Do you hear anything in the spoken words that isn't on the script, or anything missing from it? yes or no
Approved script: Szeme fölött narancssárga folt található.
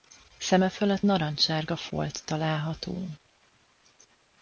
no